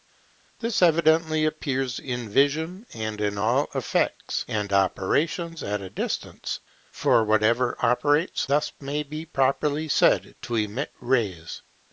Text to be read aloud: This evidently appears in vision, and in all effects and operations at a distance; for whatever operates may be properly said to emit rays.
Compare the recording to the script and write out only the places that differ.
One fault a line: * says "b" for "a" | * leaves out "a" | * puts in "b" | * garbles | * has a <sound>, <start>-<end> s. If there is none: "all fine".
* puts in "thus"